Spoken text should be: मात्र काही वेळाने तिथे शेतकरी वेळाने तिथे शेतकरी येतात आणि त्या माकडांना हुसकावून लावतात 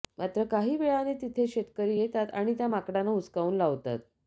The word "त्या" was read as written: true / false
true